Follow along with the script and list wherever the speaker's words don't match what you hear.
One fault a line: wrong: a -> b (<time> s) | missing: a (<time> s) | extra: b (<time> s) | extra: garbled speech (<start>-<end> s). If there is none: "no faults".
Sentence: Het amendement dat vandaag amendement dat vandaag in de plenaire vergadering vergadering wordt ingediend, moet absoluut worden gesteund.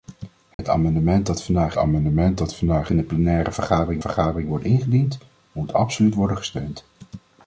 no faults